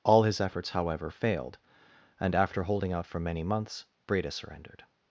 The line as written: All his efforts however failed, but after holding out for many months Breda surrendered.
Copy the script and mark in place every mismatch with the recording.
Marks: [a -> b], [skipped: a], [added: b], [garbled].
All his efforts however failed, [but -> and] after holding out for many months Breda surrendered.